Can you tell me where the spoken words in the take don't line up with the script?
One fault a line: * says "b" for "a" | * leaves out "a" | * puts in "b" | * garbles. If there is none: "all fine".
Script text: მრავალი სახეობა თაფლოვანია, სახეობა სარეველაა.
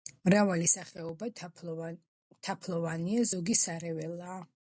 * says "ზოგი" for "სახეობა"